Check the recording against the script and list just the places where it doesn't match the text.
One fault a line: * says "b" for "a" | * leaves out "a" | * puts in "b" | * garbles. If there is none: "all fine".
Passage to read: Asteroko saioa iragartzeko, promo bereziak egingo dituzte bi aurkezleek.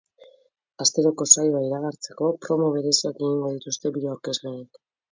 all fine